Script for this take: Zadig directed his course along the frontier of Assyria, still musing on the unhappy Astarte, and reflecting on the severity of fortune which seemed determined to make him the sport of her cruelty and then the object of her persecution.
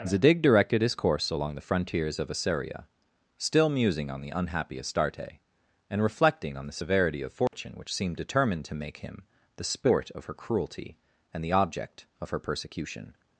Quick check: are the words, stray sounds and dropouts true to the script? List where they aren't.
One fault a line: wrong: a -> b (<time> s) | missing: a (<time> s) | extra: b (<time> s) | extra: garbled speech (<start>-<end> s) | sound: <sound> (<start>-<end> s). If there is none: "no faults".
wrong: frontier -> frontiers (1.7 s)
sound: dropout (7.5-7.5 s)
missing: then (11.4 s)